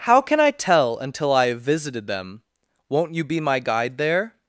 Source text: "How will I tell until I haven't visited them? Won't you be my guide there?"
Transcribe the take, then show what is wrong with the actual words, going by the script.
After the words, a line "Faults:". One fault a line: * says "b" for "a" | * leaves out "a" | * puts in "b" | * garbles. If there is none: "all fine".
"How can I tell until I have visited them? Won't you be my guide there?"
Faults:
* says "can" for "will"
* says "have" for "haven't"